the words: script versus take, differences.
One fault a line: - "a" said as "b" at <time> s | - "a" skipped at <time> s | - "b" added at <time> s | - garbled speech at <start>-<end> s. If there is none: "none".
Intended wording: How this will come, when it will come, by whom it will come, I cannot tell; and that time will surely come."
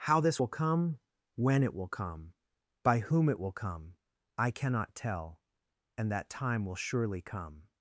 none